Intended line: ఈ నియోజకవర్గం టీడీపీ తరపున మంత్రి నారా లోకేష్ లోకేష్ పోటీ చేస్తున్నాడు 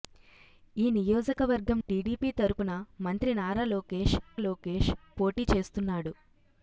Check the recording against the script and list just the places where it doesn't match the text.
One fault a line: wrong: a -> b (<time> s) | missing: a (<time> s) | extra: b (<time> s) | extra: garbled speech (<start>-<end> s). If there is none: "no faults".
no faults